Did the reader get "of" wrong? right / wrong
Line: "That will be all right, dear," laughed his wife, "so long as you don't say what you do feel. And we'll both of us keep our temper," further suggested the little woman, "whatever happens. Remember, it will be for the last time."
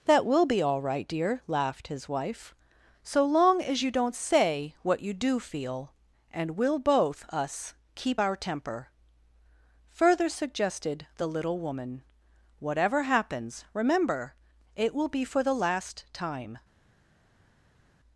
wrong